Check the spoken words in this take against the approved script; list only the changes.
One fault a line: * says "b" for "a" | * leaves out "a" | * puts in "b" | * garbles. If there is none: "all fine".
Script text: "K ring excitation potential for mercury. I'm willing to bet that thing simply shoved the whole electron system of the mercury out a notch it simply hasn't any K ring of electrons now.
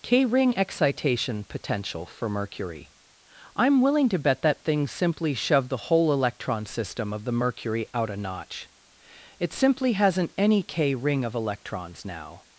all fine